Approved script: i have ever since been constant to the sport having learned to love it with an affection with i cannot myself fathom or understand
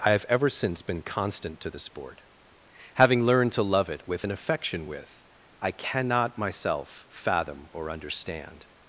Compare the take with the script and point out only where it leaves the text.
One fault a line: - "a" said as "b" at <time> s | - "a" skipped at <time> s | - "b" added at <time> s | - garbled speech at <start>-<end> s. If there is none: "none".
none